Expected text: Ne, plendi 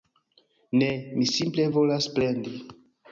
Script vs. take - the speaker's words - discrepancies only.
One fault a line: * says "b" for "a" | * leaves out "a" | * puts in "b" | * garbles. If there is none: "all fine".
* puts in "mi simple volas"